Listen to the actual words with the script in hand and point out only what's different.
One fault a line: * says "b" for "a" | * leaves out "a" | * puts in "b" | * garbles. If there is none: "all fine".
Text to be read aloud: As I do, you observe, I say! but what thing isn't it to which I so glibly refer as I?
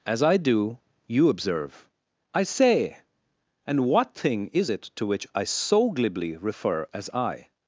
* says "and" for "but"
* says "is" for "isn't"